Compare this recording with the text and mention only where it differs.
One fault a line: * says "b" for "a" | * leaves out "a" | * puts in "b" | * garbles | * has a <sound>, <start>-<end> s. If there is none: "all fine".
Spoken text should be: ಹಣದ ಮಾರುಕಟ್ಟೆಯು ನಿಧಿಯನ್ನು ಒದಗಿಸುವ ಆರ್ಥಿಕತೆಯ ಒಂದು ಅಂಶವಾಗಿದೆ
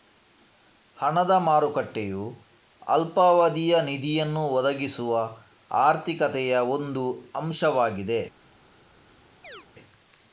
* puts in "ಅಲ್ಪಾವಧಿಯ"
* has a chirp, 9.4-9.7 s